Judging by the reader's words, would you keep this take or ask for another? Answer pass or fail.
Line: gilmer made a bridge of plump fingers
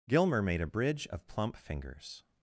pass